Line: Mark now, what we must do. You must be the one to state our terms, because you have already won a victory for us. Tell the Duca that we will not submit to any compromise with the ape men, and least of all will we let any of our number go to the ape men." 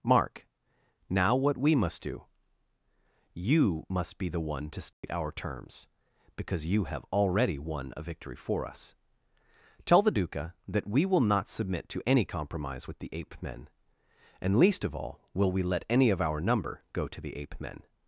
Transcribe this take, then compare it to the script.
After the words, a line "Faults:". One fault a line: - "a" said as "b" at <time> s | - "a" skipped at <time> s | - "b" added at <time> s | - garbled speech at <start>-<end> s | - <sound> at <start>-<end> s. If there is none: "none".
Mark now, what we must do. You must be the one to state our terms, because you have already won a victory for us. Tell the Duca that we will not submit to any compromise with the ape men, and least of all will we let any of our number go to the ape men."
Faults:
- dropout at 4.9-5.0 s